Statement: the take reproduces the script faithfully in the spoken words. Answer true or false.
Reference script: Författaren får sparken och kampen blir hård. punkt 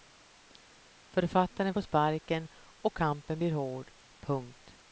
true